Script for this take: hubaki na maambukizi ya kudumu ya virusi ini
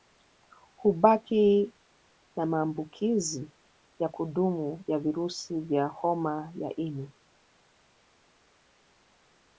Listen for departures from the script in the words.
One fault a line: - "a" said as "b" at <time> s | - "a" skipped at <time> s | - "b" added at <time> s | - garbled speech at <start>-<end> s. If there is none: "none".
- "vya homa ya" added at 5.6 s